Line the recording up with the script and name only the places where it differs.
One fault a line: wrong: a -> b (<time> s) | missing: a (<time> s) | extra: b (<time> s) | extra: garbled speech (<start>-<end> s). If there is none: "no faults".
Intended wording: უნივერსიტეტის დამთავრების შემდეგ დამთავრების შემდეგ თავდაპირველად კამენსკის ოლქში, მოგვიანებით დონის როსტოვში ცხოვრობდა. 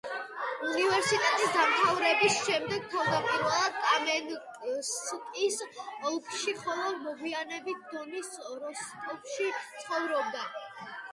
missing: დამთავრების შემდეგ (2.9 s)
extra: ხოლო (6.6 s)